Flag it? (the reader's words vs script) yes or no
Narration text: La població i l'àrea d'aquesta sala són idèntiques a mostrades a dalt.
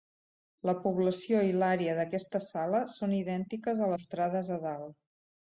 no